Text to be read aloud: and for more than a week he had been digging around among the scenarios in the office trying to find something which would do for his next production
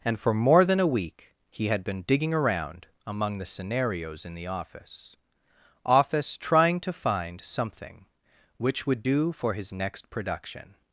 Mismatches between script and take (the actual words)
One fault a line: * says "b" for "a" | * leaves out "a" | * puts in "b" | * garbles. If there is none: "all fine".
* puts in "office"